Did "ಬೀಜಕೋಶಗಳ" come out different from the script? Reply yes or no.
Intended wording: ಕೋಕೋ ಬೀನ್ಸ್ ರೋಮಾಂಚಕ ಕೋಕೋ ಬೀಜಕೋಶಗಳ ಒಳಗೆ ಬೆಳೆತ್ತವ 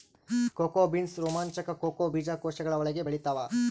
no